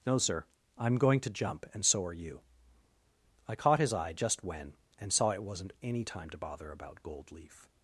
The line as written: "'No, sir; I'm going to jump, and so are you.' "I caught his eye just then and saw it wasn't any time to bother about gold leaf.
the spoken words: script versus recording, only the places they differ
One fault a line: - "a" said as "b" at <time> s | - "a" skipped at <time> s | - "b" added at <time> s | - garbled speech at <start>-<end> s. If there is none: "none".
- "then" said as "when" at 4.4 s